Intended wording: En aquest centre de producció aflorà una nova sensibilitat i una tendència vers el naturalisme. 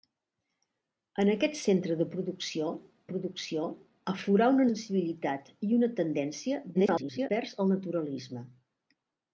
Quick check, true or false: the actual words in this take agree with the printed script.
false